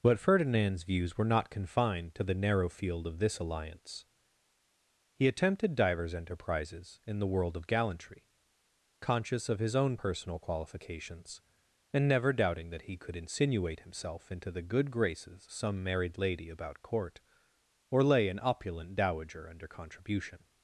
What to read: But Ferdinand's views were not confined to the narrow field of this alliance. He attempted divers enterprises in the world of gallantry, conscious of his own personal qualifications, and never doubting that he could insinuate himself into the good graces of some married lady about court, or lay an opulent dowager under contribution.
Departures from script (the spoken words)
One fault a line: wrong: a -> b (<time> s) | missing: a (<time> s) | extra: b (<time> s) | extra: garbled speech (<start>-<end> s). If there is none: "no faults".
missing: of (15.5 s)